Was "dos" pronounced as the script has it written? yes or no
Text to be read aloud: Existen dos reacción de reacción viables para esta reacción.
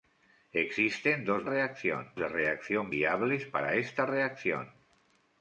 yes